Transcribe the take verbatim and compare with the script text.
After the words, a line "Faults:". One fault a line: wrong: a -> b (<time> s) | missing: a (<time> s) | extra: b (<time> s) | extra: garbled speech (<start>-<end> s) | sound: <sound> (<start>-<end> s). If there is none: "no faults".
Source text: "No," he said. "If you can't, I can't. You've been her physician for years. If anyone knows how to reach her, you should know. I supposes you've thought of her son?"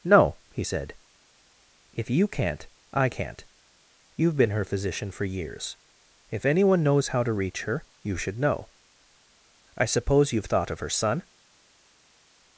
"No," he said. "If you can't, I can't. You've been her physician for years. If anyone knows how to reach her, you should know. I suppose you've thought of her son?"
Faults:
wrong: supposes -> suppose (9.9 s)